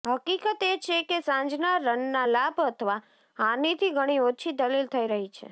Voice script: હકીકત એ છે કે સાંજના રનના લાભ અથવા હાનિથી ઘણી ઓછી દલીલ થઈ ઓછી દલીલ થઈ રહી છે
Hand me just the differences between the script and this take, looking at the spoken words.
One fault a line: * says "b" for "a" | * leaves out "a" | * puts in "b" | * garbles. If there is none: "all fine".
* leaves out "ઓછી દલીલ થઈ"